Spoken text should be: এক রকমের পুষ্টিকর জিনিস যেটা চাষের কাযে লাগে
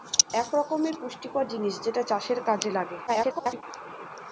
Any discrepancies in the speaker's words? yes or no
yes